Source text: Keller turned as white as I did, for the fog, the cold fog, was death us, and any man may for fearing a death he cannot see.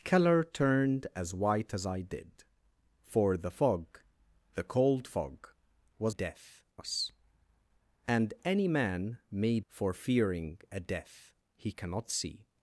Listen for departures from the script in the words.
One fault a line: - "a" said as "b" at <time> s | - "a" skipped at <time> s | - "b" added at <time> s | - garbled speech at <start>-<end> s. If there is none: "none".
none